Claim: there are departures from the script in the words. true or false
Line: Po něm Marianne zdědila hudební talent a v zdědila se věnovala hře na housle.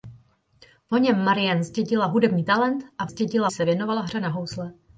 false